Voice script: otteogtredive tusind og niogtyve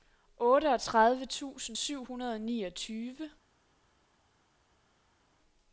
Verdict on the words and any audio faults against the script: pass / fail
fail